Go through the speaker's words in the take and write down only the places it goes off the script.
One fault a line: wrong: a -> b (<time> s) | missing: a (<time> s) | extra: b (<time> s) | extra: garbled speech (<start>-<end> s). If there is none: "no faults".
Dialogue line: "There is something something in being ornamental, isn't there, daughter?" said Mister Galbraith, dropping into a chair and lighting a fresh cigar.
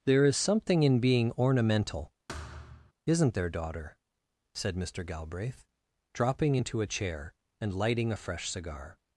missing: something (0.8 s)